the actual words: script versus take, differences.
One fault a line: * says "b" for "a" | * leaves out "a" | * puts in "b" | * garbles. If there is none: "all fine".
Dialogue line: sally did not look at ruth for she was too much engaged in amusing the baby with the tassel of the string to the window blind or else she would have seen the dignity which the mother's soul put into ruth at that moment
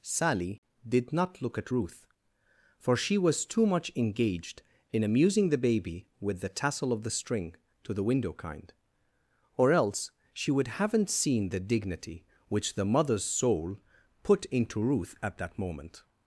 * says "kind" for "blind"
* says "haven't" for "have"